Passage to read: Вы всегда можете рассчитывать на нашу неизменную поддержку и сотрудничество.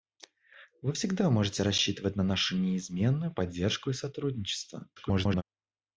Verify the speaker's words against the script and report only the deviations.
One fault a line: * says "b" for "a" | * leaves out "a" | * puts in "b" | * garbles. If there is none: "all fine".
* garbles